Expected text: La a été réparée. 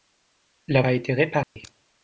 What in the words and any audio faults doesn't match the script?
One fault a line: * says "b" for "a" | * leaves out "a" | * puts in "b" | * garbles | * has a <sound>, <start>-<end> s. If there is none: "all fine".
* has a dropout, 1.4-1.6 s